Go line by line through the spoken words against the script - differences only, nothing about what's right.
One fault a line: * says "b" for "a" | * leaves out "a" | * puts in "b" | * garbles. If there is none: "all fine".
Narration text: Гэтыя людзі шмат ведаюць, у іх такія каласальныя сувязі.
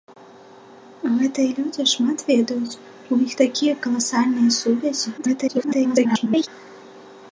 * garbles